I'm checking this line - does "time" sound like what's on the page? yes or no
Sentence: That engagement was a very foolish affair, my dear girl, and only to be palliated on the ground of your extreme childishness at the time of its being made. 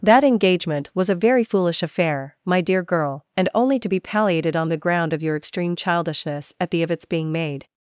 no